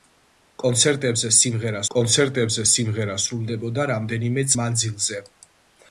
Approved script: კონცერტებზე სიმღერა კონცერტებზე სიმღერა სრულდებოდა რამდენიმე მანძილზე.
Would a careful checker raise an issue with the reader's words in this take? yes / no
no